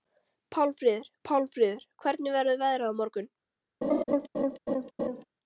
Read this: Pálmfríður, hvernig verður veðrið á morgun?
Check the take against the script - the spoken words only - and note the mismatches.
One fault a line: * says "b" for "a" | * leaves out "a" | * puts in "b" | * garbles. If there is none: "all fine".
* puts in "pálmfríður"